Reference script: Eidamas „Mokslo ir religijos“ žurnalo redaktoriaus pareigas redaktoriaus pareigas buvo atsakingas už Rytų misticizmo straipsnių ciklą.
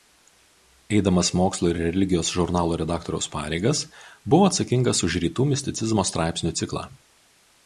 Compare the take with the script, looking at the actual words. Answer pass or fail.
fail